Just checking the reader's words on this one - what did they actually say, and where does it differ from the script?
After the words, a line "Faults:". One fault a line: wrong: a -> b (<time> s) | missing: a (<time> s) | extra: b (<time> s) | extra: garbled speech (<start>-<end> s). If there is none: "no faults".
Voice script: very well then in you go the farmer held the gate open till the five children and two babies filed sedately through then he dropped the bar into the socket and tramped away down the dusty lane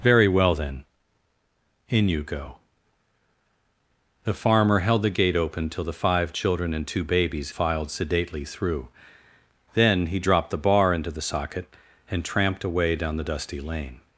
very well then in you go the farmer held the gate open till the five children and two babies filed sedately through then he dropped the bar into the socket and tramped away down the dusty lane
Faults:
no faults